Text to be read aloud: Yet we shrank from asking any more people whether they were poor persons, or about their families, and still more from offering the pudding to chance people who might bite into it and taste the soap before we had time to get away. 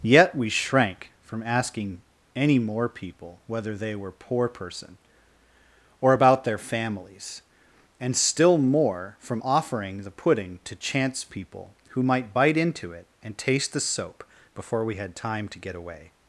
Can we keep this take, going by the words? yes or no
no